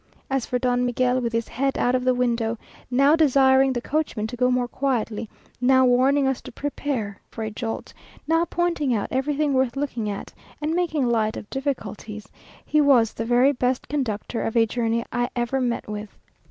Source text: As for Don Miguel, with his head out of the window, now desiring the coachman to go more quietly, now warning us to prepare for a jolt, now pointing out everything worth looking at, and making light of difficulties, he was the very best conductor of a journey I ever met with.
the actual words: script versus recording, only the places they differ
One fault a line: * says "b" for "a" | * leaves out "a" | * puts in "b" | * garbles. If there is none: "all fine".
all fine